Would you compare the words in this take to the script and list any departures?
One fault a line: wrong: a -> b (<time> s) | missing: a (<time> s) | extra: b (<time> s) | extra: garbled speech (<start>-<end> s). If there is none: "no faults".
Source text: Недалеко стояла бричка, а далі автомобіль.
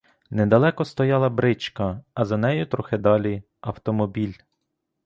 extra: за нею трохи (2.2 s)